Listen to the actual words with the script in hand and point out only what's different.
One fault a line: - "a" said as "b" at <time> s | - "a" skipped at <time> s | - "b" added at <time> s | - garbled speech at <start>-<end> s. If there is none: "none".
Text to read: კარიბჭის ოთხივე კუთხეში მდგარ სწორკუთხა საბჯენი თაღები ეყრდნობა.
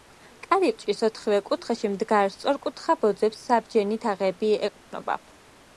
- "ბოძებს" added at 3.0 s